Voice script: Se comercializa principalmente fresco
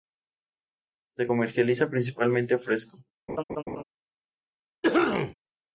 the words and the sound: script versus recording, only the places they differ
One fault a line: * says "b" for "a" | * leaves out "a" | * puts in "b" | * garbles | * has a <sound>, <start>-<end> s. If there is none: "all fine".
* has a laugh, 3.3-3.8 s
* has a cough, 4.8-5.3 s